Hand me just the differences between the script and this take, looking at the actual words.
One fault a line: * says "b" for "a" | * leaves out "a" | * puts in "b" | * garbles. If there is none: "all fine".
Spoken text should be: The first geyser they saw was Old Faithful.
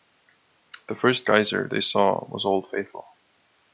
all fine